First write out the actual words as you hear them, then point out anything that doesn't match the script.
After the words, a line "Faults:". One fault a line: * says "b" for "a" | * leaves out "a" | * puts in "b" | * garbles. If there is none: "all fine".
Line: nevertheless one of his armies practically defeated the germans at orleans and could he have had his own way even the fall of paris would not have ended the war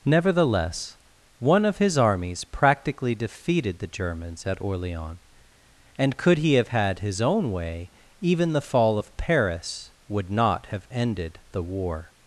nevertheless one of his armies practically defeated the germans at orleans and could he have had his own way even the fall of paris would not have ended the war
Faults:
all fine